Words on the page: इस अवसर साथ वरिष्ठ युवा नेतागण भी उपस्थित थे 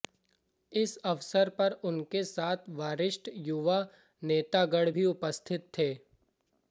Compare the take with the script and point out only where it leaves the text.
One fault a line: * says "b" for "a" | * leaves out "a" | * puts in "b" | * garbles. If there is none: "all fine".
* puts in "पर उनके"